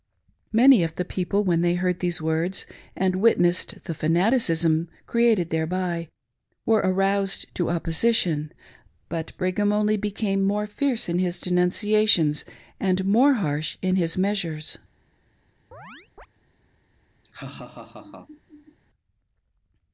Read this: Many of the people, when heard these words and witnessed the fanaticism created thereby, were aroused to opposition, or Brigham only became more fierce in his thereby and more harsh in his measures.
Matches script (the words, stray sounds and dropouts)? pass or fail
fail